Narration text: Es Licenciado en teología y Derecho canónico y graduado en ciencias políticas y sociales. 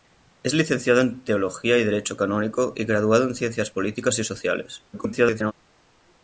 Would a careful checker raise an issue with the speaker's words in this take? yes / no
yes